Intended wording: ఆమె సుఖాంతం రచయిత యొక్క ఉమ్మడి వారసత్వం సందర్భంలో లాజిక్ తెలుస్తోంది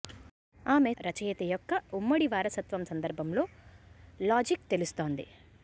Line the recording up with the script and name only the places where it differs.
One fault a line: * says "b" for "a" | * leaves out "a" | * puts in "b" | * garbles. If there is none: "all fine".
* leaves out "సుఖాంతం"